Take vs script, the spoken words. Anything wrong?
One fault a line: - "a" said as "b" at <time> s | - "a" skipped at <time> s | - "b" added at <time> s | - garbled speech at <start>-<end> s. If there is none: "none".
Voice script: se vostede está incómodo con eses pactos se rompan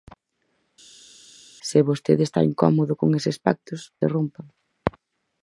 none